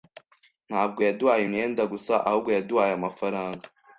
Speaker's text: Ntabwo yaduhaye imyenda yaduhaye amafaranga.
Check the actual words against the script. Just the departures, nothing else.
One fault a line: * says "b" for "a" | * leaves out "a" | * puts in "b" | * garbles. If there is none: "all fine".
* puts in "gusa ahubwo"